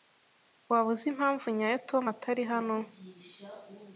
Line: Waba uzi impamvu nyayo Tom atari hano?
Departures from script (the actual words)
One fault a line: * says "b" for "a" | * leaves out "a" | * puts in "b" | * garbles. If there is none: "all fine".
all fine